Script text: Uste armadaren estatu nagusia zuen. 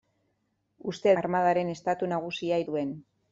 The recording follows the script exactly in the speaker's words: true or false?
true